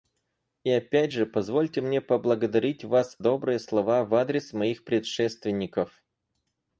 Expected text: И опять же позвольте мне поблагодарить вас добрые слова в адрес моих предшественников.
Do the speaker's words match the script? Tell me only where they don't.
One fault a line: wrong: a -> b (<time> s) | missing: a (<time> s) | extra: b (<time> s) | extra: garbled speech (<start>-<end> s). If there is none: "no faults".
no faults